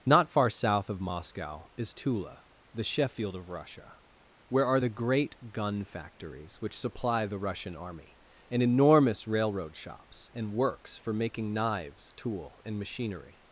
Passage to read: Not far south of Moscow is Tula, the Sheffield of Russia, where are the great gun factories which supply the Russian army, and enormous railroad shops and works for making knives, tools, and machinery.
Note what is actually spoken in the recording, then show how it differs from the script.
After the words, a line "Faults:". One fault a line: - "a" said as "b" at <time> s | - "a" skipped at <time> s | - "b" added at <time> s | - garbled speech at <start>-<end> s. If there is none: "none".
Not far south of Moscow is Tula, the Sheffield of Russia, where are the great gun factories which supply the Russian army, and enormous railroad shops and works for making knives, tool, and machinery.
Faults:
- "tools" said as "tool" at 12.1 s